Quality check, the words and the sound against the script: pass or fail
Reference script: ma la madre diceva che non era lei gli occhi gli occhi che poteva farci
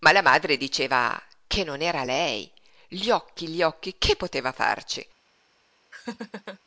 fail